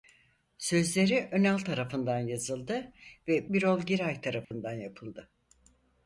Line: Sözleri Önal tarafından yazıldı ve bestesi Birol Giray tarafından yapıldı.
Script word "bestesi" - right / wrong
wrong